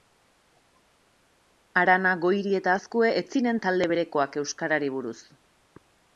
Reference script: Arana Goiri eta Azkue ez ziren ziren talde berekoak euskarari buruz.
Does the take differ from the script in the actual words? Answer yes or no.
yes